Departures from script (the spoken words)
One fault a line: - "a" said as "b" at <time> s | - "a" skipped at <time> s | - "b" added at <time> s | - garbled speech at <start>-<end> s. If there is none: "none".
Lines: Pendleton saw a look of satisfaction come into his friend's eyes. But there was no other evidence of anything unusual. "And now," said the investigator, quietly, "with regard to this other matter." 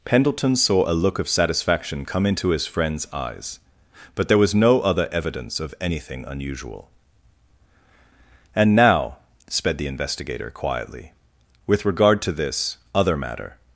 - "said" said as "sped" at 9.5 s